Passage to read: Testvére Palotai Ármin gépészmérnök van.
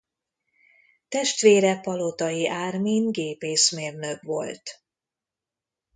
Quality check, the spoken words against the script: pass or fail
fail